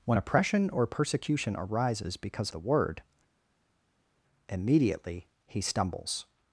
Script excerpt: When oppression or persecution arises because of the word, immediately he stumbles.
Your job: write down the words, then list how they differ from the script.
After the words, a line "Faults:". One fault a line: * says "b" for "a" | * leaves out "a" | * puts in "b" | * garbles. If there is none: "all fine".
When oppression or persecution arises because the word, immediately he stumbles.
Faults:
* leaves out "of"